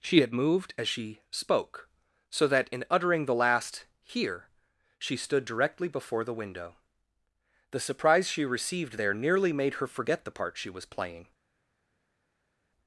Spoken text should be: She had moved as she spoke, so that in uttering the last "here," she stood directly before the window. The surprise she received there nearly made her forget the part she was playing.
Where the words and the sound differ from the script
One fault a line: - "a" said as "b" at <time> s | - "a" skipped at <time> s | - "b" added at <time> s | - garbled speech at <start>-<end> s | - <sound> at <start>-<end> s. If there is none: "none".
none